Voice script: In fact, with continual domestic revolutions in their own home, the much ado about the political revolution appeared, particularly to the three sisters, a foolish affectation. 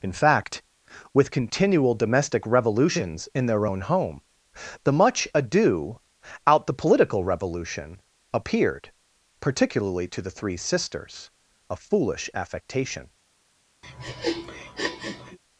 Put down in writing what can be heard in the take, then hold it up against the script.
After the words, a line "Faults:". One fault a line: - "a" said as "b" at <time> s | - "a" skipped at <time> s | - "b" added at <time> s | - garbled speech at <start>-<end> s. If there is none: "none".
In fact, with continual domestic revolutions in their own home, the much ado out the political revolution appeared, particularly to the three sisters, a foolish affectation.
Faults:
- "about" said as "out" at 6.5 s